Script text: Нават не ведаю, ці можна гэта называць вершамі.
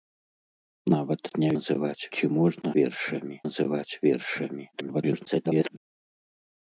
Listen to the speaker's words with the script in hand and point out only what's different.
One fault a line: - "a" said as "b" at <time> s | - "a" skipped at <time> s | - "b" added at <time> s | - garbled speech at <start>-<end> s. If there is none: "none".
- "ведаю" said as "называць" at 1.6 s
- "гэта" said as "вершамі" at 2.8 s
- garbled speech at 4.7-5.8 s